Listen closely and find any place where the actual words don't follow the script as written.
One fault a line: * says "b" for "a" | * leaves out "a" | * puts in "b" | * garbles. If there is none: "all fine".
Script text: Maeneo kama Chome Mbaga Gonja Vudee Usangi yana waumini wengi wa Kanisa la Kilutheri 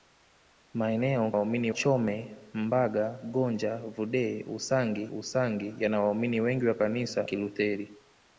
* says "waumini" for "kama"
* puts in "Usangi"
* leaves out "la"